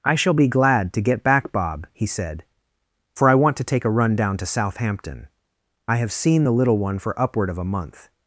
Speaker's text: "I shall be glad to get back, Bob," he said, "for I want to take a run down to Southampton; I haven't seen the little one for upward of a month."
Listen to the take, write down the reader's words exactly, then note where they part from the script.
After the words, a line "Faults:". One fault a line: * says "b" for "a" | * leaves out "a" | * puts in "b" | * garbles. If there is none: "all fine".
"I shall be glad to get back, Bob," he said, "for I want to take a run down to Southampton; I have seen the little one for upward of a month."
Faults:
* says "have" for "haven't"